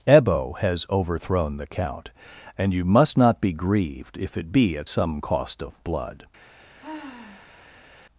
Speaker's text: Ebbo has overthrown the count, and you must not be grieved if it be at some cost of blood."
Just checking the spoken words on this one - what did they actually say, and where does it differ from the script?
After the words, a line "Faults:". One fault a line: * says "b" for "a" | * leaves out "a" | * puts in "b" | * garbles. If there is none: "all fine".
Ebbo has overthrown the count, and you must not be grieved if it be at some cost of blood."
Faults:
all fine